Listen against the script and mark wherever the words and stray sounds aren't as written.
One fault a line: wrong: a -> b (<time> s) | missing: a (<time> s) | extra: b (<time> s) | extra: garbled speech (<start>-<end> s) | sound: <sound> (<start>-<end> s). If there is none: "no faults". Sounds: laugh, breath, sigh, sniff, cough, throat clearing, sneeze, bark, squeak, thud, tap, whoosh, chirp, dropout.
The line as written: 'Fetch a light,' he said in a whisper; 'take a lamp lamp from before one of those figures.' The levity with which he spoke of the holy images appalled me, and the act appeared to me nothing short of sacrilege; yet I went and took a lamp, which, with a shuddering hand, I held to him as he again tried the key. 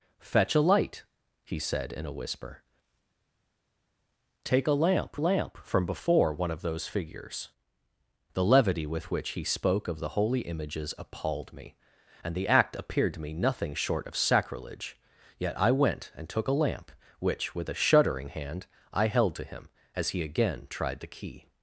no faults